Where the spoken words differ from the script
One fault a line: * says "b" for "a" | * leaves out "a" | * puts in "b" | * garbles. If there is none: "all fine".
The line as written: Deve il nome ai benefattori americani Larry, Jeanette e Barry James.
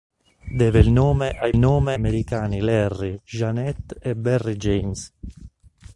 * says "nome" for "benefattori"